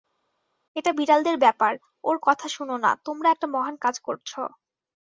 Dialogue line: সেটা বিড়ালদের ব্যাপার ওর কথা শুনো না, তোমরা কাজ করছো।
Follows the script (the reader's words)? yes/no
no